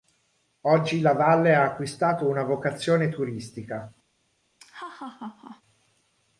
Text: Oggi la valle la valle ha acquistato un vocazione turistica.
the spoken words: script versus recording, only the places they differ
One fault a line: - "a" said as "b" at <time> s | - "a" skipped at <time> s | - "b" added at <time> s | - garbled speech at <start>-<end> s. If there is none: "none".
- "la valle" skipped at 1.5 s
- "un" said as "una" at 2.3 s